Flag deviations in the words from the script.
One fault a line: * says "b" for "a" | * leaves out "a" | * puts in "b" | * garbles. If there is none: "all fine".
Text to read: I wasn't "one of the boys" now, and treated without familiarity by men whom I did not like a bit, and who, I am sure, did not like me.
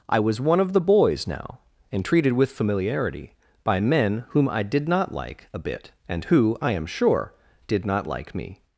* says "was" for "wasn't"
* says "with" for "without"